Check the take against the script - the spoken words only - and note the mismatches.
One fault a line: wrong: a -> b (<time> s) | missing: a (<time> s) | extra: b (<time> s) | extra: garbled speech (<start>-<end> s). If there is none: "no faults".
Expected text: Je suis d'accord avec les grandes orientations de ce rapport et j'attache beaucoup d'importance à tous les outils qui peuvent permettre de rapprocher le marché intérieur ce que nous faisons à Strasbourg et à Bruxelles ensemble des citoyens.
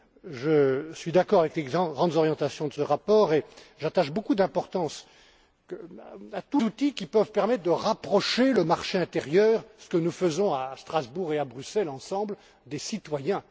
missing: les (6.6 s)